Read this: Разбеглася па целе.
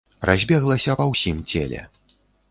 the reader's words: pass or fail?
fail